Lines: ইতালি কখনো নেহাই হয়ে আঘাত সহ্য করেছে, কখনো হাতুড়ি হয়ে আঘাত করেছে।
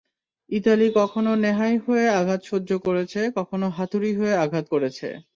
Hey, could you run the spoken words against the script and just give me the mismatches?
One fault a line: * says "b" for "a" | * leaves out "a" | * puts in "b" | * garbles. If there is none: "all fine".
all fine